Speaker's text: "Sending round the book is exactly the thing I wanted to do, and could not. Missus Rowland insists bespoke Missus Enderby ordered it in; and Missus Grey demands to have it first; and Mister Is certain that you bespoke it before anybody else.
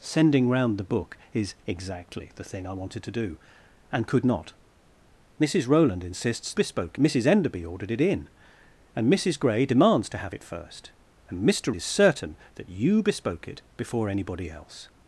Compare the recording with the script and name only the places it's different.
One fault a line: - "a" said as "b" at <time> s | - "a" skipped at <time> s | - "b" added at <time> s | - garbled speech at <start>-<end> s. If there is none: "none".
none